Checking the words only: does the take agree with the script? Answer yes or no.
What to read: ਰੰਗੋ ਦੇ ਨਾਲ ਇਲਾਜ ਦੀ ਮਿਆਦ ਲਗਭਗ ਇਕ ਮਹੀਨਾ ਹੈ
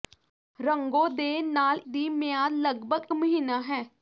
no